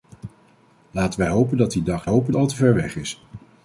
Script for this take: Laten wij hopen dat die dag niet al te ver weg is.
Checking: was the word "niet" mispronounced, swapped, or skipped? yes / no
yes